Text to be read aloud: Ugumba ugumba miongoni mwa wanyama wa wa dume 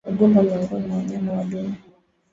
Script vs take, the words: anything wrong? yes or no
yes